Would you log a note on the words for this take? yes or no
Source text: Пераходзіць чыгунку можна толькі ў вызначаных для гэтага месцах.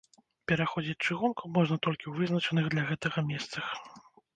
no